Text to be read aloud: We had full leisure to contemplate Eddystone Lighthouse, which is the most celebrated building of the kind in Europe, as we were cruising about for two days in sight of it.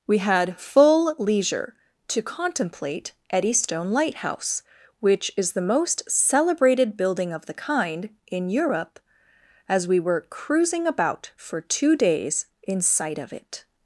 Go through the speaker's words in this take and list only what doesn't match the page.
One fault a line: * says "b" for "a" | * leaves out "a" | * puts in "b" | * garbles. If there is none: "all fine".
all fine